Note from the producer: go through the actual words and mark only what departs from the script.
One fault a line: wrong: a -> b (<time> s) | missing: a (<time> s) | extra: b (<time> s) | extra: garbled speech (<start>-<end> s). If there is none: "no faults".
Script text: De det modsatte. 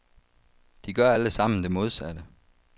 extra: gør alle sammen (0.9 s)